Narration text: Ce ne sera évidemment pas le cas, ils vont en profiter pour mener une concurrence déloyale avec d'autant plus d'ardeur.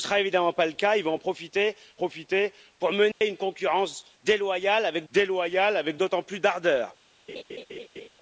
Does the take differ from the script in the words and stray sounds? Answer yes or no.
yes